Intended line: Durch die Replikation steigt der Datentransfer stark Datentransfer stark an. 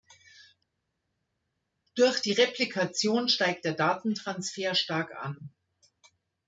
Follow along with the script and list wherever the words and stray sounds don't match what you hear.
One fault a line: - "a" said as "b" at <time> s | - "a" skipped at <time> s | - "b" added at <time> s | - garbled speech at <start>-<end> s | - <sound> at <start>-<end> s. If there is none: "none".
- "Datentransfer stark" skipped at 5.1 s